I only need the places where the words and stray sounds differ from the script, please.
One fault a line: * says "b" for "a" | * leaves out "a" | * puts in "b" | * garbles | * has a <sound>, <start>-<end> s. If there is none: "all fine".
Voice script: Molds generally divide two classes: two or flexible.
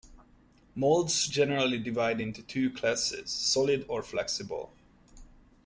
* puts in "into"
* says "solid" for "two"